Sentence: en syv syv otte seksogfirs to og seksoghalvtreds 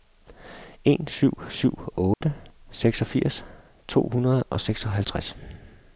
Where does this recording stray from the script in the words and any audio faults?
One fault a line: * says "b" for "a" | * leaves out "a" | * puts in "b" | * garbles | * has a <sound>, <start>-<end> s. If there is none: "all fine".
* has a dropout, 2.1-2.2 s
* puts in "hundrede"